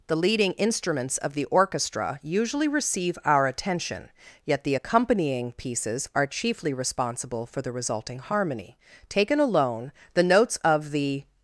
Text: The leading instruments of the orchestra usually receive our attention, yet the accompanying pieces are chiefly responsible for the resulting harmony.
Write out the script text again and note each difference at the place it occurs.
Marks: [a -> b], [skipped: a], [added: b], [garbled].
The leading instruments of the orchestra usually receive our attention, yet the accompanying pieces are chiefly responsible for the resulting harmony. [added: Taken alone the notes of the]